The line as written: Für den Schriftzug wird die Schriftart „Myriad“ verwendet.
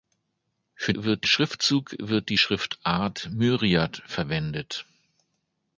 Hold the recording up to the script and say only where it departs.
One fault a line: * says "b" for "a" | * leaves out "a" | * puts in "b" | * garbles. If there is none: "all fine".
* says "wird" for "den"